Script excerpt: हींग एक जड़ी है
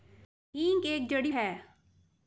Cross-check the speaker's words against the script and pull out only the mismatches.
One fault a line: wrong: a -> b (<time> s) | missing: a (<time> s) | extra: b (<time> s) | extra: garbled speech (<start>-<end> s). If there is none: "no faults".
no faults